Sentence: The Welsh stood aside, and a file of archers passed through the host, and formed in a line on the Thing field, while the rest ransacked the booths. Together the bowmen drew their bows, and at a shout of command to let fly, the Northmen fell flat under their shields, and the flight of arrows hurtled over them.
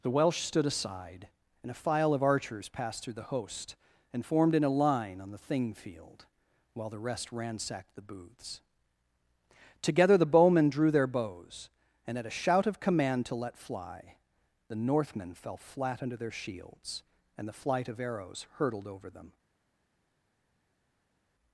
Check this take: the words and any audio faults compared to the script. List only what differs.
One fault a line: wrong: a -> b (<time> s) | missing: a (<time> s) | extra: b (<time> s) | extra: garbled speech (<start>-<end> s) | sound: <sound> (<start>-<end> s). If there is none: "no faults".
no faults